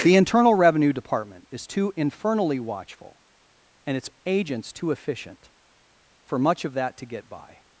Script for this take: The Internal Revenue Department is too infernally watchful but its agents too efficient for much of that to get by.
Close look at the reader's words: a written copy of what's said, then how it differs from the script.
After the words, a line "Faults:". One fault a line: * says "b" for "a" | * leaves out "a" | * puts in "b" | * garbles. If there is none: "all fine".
The Internal Revenue Department is too infernally watchful and its agents too efficient for much of that to get by.
Faults:
* says "and" for "but"